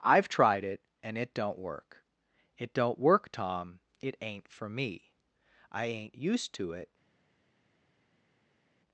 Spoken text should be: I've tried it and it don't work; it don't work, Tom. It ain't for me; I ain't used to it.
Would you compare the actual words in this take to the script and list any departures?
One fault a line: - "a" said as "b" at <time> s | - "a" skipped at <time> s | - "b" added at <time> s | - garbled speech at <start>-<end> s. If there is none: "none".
none